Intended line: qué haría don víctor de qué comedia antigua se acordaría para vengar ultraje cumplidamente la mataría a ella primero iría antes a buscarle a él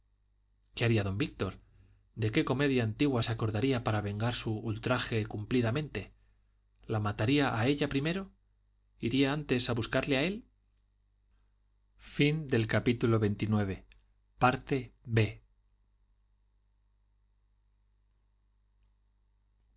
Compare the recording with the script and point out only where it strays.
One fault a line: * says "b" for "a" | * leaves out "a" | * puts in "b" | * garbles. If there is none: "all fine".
* puts in "su"